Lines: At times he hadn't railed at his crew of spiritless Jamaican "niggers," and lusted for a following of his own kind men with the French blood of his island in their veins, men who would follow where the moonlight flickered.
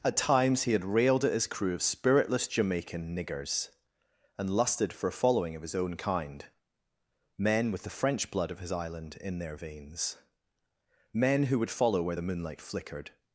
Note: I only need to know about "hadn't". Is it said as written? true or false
false